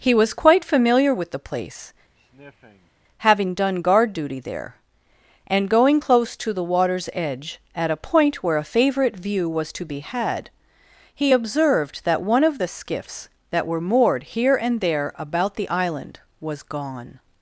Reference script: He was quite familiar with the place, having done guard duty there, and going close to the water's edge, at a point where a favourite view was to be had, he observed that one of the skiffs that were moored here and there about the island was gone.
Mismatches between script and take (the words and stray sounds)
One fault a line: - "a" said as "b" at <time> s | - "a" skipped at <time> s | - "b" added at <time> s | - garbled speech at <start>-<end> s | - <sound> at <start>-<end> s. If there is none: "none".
- sniff at 2.2-2.9 s